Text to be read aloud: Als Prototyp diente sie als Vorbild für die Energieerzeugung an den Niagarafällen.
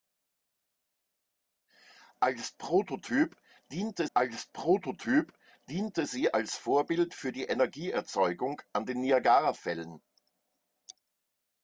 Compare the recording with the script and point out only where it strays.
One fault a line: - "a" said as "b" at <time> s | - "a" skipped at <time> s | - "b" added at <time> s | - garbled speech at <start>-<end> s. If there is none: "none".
- "als Prototyp diente" added at 4.1 s